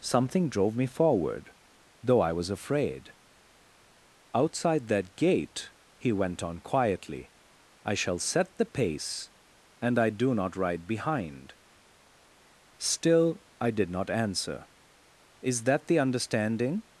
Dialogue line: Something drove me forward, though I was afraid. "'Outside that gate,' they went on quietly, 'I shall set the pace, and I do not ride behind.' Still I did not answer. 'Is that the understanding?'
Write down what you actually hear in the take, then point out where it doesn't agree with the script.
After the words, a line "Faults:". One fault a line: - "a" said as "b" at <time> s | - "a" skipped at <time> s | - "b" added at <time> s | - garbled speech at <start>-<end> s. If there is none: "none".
Something drove me forward, though I was afraid. "'Outside that gate,' he went on quietly, 'I shall set the pace, and I do not ride behind.' Still I did not answer. 'Is that the understanding?'
Faults:
- "they" said as "he" at 6.0 s